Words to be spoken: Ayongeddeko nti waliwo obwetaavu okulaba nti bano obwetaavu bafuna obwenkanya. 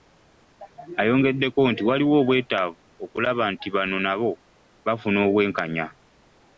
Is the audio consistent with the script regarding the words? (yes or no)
no